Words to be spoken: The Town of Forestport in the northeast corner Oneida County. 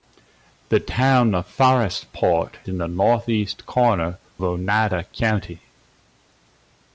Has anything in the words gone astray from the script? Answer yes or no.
no